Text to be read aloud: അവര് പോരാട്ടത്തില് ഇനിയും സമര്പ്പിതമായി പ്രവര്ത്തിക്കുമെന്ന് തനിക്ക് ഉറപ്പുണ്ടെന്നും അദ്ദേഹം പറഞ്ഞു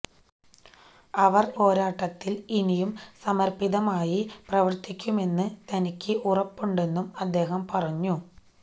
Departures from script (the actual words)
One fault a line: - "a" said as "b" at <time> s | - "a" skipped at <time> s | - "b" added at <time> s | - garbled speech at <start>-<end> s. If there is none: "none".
none